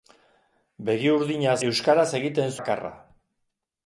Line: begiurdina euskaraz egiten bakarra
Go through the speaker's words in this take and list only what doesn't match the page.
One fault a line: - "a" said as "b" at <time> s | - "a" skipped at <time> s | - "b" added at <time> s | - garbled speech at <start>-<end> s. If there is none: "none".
none